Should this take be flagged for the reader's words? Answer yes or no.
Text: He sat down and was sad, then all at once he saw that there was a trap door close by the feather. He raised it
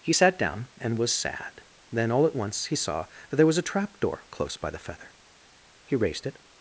no